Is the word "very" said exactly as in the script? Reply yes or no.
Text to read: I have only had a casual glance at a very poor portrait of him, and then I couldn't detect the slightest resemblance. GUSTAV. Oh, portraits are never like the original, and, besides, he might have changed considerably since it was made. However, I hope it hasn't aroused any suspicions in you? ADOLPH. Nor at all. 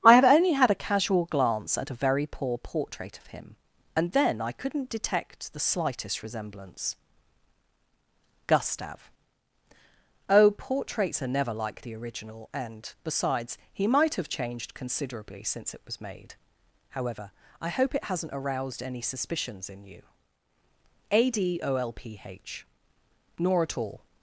yes